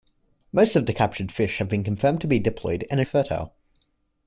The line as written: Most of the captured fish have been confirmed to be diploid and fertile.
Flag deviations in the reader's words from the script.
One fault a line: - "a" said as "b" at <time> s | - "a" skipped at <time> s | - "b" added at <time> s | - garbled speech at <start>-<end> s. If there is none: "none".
none